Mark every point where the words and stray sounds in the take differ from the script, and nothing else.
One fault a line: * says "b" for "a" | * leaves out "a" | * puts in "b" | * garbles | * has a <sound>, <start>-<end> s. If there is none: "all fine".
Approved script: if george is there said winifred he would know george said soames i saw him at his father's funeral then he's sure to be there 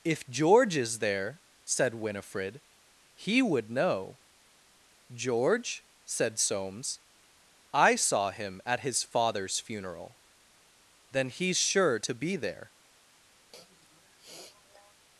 * has a sniff, 13.5-14.9 s